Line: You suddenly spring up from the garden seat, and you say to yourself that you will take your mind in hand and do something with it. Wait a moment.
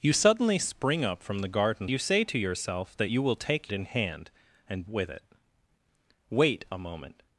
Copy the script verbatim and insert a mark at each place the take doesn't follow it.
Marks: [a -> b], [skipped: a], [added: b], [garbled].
You suddenly spring up from the garden [skipped: seat, and] you say to yourself that you will take [skipped: your mind] in hand and [skipped: do something] with it. Wait a moment.